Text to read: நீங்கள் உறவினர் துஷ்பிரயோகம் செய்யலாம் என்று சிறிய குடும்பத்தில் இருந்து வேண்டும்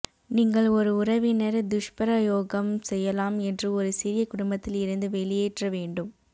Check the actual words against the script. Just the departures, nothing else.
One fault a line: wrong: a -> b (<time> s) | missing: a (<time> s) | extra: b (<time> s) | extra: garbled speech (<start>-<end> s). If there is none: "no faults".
extra: ஒரு (0.7 s)
extra: ஒரு (3.8 s)
extra: வெளியேற்ற (5.2 s)